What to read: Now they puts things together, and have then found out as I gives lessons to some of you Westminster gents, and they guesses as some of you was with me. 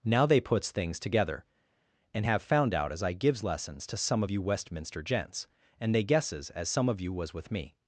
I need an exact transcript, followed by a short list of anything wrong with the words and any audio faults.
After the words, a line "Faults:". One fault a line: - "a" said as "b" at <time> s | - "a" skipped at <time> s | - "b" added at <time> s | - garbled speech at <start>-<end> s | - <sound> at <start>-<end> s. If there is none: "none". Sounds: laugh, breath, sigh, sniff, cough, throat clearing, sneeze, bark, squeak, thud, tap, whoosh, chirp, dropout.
Now they puts things together, and have found out as I gives lessons to some of you Westminster gents, and they guesses as some of you was with me.
Faults:
- "then" skipped at 2.4 s